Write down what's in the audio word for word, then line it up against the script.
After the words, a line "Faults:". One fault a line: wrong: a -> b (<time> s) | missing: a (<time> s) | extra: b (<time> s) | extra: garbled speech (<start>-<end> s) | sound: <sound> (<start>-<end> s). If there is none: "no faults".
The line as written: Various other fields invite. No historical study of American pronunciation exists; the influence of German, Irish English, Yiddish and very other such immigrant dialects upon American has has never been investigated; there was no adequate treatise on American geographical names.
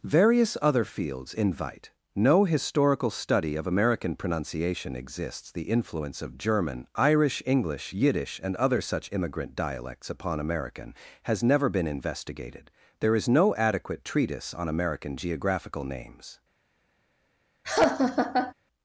Various other fields invite. No historical study of American pronunciation exists; the influence of German, Irish English, Yiddish and other such immigrant dialects upon American has never been investigated; there is no adequate treatise on American geographical names.
Faults:
missing: very (8.5 s)
missing: has (11.4 s)
wrong: was -> is (13.1 s)
sound: laugh (17.6-18.5 s)